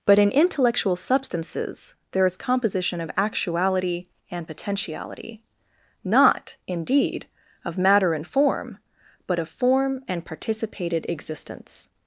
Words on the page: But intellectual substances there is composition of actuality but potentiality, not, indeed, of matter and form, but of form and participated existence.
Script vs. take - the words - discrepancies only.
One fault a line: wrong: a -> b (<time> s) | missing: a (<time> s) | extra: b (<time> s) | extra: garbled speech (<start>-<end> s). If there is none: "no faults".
extra: in (0.2 s)
wrong: but -> and (4.3 s)